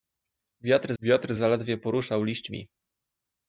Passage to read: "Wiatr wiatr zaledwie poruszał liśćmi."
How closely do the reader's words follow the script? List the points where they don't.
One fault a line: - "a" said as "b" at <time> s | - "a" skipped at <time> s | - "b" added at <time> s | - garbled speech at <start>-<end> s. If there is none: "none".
none